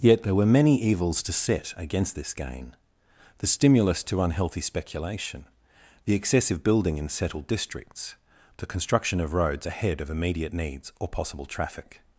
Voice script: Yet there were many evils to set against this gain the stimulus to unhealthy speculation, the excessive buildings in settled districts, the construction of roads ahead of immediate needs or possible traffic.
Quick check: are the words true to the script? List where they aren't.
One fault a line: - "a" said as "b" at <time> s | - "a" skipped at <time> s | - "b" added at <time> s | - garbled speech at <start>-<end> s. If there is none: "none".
- "buildings" said as "building" at 6.6 s